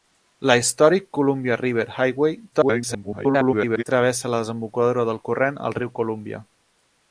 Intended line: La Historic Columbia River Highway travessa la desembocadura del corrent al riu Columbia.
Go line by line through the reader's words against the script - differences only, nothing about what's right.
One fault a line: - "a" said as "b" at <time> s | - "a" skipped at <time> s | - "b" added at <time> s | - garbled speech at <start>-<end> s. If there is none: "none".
- garbled speech at 2.5-3.8 s